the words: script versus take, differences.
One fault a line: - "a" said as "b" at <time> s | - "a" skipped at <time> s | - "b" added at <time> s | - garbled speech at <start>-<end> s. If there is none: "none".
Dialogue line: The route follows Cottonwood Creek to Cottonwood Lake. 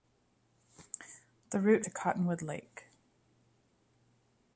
- "follows Cottonwood Creek" skipped at 1.9 s